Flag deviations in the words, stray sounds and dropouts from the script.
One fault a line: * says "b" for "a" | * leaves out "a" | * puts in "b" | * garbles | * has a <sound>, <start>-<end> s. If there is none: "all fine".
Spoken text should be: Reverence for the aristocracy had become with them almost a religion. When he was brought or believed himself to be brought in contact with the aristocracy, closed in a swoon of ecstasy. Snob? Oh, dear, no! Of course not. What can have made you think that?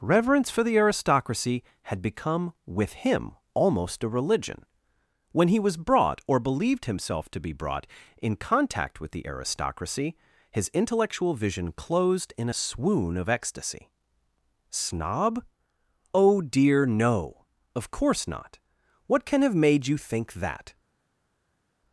* says "him" for "them"
* puts in "his intellectual vision"